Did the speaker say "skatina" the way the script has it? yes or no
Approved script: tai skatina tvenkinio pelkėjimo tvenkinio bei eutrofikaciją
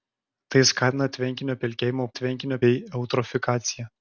yes